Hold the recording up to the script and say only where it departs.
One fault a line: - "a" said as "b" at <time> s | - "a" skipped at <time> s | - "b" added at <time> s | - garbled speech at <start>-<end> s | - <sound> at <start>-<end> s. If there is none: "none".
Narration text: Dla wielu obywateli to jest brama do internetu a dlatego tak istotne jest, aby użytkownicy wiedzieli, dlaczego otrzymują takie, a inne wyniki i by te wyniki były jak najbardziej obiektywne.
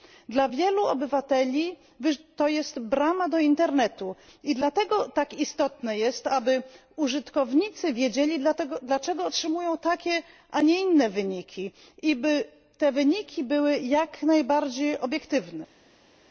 - "a" said as "i" at 4.4 s
- "nie" added at 10.6 s